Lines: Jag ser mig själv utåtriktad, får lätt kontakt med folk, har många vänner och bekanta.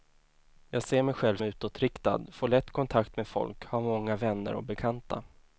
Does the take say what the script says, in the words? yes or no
yes